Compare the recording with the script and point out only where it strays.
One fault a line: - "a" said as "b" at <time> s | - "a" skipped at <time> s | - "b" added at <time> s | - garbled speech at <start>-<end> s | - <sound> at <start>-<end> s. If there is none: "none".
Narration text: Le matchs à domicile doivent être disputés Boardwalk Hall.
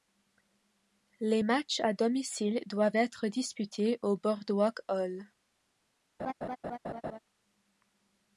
- "Le" said as "Les" at 1.2 s
- "au" added at 4.0 s
- laugh at 6.2-7.2 s